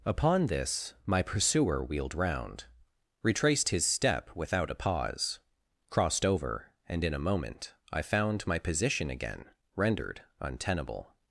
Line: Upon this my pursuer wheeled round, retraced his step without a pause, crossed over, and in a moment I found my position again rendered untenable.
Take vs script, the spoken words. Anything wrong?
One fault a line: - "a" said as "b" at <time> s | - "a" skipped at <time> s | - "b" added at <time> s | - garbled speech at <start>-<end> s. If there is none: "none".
none